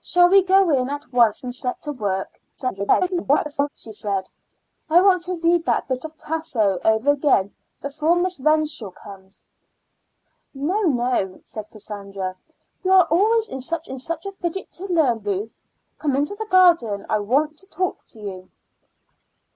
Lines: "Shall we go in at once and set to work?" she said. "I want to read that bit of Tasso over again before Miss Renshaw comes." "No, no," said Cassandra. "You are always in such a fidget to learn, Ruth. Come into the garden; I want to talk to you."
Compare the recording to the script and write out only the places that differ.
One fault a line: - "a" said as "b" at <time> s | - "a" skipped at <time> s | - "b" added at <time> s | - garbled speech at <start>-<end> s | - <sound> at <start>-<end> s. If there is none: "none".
- garbled speech at 2.6-3.7 s
- "in such" added at 13.9 s